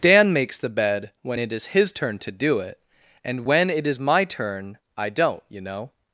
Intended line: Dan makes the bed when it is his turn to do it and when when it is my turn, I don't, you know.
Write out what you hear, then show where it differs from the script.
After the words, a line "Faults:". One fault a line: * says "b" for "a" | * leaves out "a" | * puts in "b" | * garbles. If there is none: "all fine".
Dan makes the bed when it is his turn to do it and when it is my turn, I don't, you know.
Faults:
* leaves out "when"